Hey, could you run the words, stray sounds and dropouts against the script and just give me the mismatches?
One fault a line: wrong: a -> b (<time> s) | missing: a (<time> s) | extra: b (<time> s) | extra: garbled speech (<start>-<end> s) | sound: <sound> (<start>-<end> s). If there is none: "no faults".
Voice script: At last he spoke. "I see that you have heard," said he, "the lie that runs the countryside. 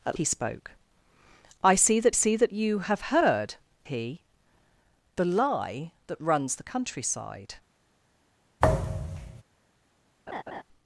missing: last (0.2 s)
extra: see that (2.1 s)
missing: said (3.6 s)
sound: thud (8.6-9.4 s)
sound: laugh (10.3-10.6 s)